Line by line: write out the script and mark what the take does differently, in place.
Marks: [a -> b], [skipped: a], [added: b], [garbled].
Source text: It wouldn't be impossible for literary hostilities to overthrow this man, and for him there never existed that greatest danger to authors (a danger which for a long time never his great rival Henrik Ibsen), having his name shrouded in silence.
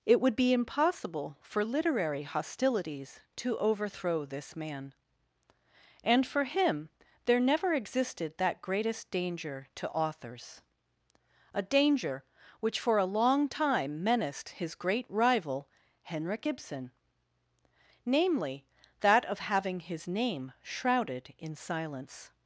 It [wouldn't -> would] be impossible for literary hostilities to overthrow this man, and for him there never existed that greatest danger to authors (a danger which for a long time [never -> menaced] his great rival Henrik Ibsen), [added: namely that of] having his name shrouded in silence.